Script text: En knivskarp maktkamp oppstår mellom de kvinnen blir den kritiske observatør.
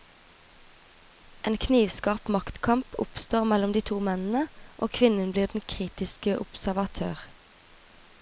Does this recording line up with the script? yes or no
no